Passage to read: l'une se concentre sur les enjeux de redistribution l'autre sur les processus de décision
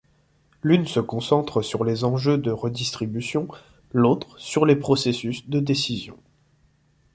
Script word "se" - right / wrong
right